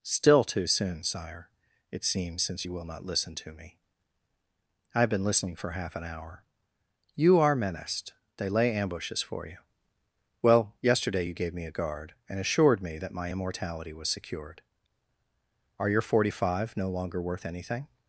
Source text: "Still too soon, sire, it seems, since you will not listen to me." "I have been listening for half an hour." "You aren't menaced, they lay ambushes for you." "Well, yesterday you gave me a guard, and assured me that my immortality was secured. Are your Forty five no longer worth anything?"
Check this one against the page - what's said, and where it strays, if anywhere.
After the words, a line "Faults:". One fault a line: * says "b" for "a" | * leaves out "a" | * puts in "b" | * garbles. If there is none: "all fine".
"Still too soon, sire, it seems, since you will not listen to me." "I have been listening for half an hour." "You are menaced, they lay ambushes for you." "Well, yesterday you gave me a guard, and assured me that my immortality was secured. Are your Forty five no longer worth anything?"
Faults:
* says "are" for "aren't"